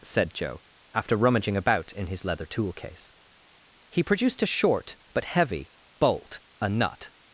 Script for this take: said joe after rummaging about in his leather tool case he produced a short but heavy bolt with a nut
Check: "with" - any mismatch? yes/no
yes